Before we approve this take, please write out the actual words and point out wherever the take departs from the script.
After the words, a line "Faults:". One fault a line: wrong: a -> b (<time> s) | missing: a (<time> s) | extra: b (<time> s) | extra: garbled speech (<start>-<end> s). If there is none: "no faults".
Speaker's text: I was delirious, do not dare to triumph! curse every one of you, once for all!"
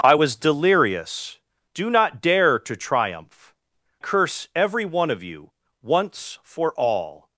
I was delirious, do not dare to triumph! curse every one of you, once for all!"
Faults:
no faults